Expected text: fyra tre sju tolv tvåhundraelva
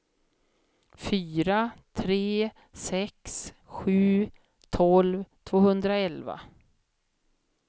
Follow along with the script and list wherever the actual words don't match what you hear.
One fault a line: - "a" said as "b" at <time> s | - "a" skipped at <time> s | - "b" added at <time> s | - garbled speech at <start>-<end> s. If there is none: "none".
- "sex" added at 2.8 s